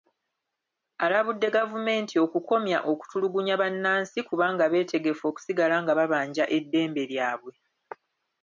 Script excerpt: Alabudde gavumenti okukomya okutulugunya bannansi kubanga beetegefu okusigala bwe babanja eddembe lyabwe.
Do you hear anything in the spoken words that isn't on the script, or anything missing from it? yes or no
yes